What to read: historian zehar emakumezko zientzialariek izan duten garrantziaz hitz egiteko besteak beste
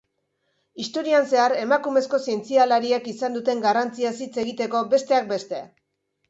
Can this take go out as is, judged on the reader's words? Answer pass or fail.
pass